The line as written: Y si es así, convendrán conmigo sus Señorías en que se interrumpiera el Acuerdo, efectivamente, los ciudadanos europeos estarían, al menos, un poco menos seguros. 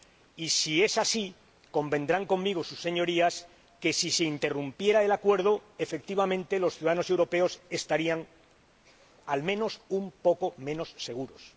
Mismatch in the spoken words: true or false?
true